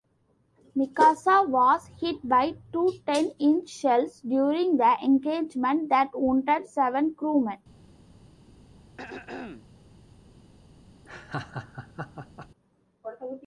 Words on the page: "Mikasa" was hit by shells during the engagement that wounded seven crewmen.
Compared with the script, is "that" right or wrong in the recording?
right